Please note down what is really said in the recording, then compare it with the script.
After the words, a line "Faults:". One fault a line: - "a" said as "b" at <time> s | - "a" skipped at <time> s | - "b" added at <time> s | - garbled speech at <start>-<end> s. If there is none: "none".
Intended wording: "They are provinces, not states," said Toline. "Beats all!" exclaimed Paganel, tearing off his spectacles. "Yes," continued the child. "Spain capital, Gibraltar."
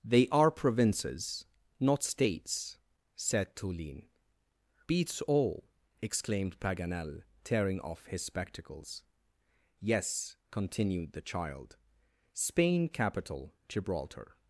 "They are provinces, not states," said Toline. "Beats all!" exclaimed Paganel, tearing off his spectacles. "Yes," continued the child. "Spain capital, Gibraltar."
Faults:
none